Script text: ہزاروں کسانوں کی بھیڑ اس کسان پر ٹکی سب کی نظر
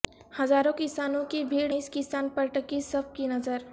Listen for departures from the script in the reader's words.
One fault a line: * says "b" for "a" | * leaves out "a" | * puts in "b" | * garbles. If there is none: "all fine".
all fine